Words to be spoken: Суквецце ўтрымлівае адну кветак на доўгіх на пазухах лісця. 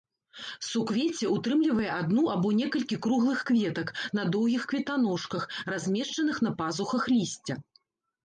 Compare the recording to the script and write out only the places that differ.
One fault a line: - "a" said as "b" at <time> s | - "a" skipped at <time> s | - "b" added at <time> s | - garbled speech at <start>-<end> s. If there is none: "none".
- "або некалькі круглых" added at 2.4 s
- "кветаножках размешчаных" added at 4.7 s